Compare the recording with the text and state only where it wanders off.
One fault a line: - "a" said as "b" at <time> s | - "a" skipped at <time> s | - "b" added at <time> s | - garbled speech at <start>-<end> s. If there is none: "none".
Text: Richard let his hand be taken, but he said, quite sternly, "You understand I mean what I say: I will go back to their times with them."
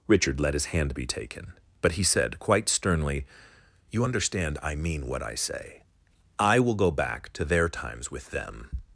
none